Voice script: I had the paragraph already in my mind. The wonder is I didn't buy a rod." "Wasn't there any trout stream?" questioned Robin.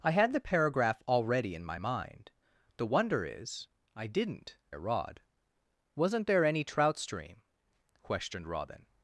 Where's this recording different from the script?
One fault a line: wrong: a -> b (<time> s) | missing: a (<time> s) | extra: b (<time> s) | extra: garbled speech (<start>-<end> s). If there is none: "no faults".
missing: buy (4.6 s)